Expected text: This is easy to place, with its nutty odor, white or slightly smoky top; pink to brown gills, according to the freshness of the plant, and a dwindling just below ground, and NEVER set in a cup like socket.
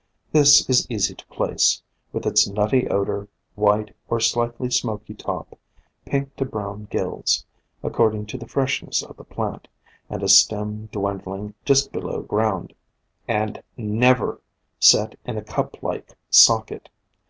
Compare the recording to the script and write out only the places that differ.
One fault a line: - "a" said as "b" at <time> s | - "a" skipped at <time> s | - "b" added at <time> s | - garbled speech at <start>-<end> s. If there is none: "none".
- "stem" added at 10.3 s